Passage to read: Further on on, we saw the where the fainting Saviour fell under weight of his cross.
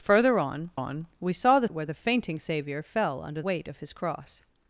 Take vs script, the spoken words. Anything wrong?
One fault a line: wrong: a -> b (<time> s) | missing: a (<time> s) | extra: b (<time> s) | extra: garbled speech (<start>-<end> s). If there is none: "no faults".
no faults